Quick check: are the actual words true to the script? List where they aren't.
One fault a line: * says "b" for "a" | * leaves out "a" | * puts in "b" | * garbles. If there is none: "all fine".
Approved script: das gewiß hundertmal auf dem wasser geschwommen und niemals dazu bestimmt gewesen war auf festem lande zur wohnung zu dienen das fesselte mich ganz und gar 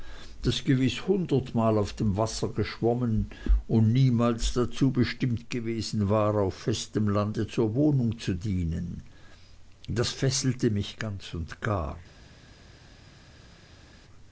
all fine